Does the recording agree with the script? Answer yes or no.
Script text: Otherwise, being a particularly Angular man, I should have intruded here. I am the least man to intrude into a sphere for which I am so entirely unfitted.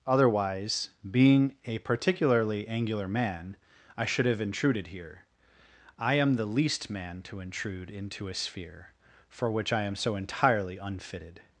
yes